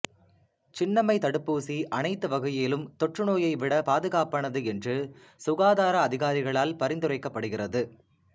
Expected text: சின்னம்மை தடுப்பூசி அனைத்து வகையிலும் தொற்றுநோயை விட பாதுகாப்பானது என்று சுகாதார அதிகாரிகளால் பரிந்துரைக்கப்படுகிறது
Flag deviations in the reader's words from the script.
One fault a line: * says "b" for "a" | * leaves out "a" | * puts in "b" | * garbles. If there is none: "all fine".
all fine